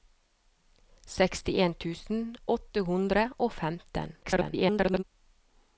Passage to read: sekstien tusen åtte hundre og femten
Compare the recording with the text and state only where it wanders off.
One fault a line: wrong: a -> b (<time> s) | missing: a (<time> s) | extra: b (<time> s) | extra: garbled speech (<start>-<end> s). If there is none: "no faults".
extra: garbled speech (4.2-5.0 s)